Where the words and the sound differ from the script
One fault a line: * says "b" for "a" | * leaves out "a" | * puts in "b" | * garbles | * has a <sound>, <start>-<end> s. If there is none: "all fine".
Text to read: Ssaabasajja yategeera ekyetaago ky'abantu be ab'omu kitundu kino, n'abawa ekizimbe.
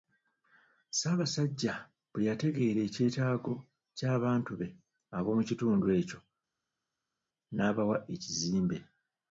* puts in "bwe"
* says "ekyo" for "kino"